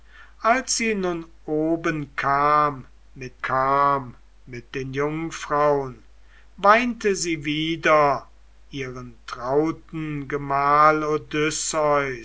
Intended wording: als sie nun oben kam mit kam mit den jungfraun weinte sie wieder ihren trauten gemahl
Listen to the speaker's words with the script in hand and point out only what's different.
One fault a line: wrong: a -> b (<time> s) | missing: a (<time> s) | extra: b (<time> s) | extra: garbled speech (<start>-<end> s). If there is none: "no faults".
no faults